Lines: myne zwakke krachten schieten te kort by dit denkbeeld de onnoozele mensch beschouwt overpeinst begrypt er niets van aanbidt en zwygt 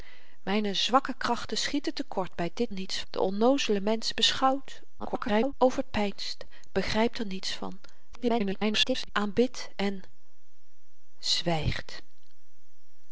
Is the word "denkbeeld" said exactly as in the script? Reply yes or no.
no